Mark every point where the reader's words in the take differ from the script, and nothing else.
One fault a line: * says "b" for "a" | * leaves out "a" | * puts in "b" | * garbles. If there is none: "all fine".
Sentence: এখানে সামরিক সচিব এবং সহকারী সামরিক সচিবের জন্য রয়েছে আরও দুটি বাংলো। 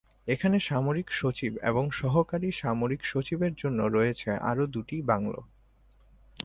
all fine